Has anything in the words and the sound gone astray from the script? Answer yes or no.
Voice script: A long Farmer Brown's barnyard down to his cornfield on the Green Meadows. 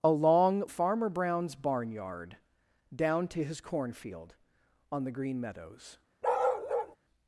yes